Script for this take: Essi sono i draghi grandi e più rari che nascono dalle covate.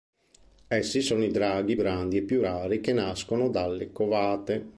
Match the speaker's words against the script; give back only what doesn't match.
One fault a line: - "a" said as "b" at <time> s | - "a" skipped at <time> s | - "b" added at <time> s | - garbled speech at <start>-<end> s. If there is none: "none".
none